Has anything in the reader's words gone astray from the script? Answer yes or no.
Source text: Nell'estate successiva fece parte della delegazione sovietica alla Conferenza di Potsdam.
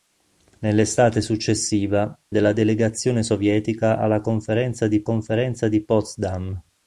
yes